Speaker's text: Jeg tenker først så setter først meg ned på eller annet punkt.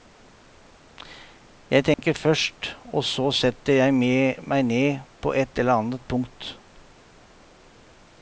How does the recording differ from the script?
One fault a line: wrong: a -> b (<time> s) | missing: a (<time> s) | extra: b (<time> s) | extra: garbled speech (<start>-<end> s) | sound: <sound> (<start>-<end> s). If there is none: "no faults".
sound: dropout (1.9-2.0 s)
extra: og (2.8 s)
wrong: først -> jeg (3.8 s)
extra: et (5.4 s)